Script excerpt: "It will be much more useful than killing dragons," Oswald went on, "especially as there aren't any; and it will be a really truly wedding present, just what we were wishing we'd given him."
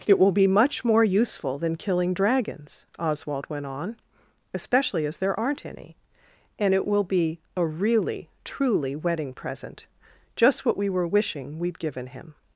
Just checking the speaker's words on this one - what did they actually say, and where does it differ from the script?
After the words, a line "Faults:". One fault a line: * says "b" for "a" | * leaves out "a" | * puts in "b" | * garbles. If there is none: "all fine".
"It will be much more useful than killing dragons," Oswald went on, "especially as there aren't any; and it will be a really truly wedding present, just what we were wishing we'd given him."
Faults:
all fine